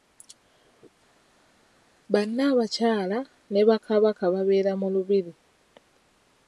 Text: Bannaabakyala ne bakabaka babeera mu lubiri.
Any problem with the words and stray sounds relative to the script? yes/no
no